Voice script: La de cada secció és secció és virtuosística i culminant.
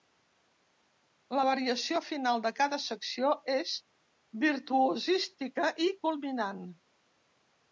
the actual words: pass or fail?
fail